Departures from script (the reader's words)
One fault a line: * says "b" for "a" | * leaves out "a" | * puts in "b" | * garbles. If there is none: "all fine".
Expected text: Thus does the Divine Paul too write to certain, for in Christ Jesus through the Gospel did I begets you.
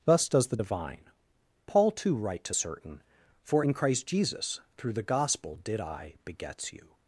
all fine